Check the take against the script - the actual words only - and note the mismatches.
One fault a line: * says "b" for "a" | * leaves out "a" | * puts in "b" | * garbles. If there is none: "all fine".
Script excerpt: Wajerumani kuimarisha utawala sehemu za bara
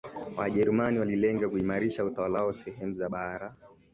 * puts in "walilenga"
* puts in "wao"